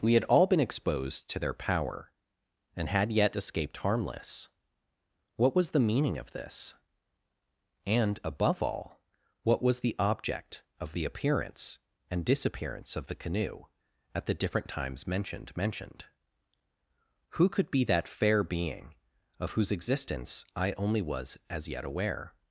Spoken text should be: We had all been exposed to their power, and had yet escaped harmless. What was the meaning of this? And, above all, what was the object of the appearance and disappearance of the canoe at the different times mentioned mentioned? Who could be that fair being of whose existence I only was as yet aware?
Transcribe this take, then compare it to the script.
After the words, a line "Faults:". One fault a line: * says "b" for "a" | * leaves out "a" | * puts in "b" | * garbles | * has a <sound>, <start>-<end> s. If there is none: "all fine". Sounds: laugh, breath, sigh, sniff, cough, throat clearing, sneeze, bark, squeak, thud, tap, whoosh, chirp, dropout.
We had all been exposed to their power, and had yet escaped harmless. What was the meaning of this? And, above all, what was the object of the appearance and disappearance of the canoe at the different times mentioned mentioned? Who could be that fair being of whose existence I only was as yet aware?
Faults:
all fine